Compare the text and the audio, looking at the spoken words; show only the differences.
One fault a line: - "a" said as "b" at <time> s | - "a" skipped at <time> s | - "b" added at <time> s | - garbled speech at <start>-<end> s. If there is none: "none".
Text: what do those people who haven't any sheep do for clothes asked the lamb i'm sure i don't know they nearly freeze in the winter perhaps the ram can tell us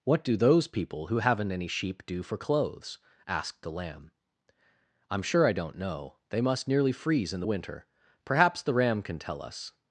- "must" added at 6.4 s